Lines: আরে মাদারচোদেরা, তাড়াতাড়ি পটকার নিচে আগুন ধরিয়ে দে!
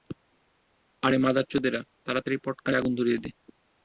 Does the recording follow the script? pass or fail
fail